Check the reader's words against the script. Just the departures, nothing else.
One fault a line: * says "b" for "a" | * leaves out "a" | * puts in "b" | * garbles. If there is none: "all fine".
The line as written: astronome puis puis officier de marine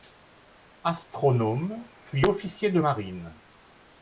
* leaves out "puis"